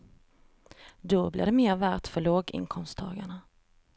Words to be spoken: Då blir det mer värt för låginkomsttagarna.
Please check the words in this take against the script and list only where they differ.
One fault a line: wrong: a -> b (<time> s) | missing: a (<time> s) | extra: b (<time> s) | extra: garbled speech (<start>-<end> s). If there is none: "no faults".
no faults